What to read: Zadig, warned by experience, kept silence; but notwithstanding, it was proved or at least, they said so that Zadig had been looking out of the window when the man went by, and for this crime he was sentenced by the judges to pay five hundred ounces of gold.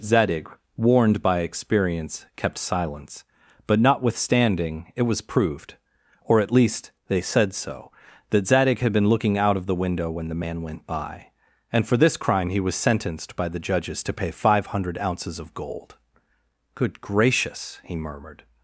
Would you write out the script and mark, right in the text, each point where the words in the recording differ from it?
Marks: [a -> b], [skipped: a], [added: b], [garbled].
Zadig, warned by experience, kept silence; but notwithstanding, it was proved or at least, they said so that Zadig had been looking out of the window when the man went by, and for this crime he was sentenced by the judges to pay five hundred ounces of gold. [added: Good gracious he murmured]